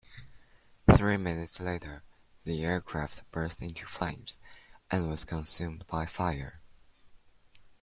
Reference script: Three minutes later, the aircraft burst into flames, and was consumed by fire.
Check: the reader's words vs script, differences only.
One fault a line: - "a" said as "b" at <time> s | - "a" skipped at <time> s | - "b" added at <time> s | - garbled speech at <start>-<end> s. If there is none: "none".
none